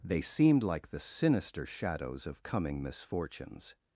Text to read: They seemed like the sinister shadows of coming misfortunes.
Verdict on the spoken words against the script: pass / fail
pass